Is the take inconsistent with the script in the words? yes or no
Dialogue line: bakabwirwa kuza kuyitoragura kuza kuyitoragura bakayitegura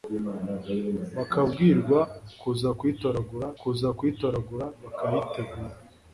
no